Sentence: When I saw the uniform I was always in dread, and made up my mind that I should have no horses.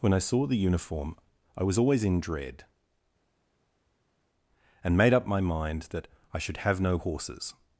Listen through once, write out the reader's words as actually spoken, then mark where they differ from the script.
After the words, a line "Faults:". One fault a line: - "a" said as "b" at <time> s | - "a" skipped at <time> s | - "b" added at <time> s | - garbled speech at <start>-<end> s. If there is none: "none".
When I saw the uniform I was always in dread, and made up my mind that I should have no horses.
Faults:
none